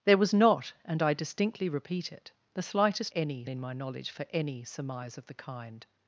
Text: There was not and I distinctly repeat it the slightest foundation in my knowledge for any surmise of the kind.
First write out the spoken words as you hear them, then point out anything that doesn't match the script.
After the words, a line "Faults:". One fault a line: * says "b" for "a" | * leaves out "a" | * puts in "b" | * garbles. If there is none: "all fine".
There was not and I distinctly repeat it the slightest any in my knowledge for any surmise of the kind.
Faults:
* says "any" for "foundation"